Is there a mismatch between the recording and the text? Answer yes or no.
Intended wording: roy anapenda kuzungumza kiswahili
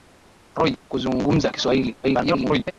yes